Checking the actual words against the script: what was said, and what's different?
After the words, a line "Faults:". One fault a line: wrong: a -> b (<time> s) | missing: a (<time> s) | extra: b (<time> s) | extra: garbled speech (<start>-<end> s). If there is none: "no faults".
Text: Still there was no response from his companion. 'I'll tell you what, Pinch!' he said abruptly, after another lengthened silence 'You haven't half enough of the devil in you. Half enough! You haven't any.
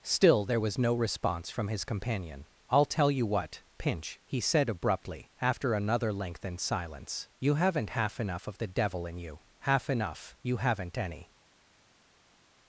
Still there was no response from his companion. 'I'll tell you what, Pinch!' he said abruptly, after another lengthened silence 'You haven't half enough of the devil in you. Half enough! You haven't any.
Faults:
no faults